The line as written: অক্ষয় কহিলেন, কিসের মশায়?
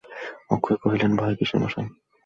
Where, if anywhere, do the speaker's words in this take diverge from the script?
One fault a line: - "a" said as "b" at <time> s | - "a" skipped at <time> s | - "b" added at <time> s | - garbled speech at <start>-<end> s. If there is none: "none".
- "ভয়" added at 1.1 s